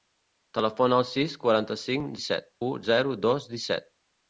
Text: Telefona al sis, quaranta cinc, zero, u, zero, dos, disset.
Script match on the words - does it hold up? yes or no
no